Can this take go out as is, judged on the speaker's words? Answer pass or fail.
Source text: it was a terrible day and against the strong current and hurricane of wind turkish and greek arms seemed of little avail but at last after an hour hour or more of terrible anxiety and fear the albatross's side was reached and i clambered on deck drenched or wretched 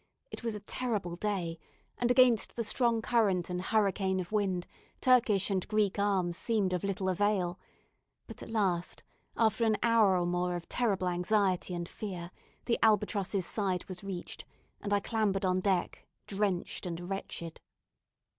fail